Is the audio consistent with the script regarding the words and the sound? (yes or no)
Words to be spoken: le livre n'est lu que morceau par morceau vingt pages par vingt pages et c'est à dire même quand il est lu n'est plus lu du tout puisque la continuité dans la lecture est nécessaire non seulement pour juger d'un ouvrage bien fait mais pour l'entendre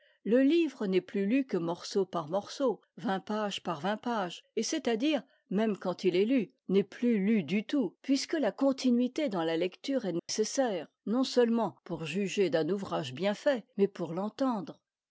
no